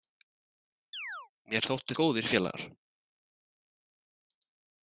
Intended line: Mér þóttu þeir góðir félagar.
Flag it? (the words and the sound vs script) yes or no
yes